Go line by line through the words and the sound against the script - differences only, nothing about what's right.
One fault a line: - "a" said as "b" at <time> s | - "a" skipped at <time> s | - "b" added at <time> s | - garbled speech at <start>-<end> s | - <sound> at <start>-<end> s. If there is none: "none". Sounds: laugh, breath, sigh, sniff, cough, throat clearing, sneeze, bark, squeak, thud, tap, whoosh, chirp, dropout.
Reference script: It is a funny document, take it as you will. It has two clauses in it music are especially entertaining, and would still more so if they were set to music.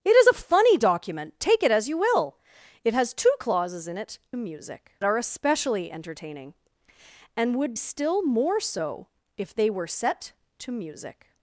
none